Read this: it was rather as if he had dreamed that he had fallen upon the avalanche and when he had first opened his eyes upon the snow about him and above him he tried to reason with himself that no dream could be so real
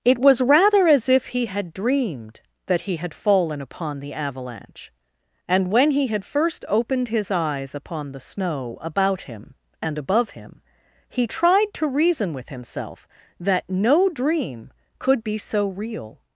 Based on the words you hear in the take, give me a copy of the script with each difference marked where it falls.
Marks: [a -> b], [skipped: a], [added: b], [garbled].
it was rather as if he had dreamed that he had fallen upon the avalanche and when he had first opened his eyes upon the snow about him and above him he tried to reason with himself that no dream could be so real